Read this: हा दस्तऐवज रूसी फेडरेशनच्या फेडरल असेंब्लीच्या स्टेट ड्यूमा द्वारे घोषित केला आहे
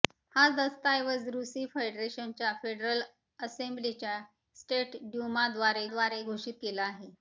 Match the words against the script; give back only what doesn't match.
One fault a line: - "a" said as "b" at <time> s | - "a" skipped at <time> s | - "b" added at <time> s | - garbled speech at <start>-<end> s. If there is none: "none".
- "द्वारे" added at 5.9 s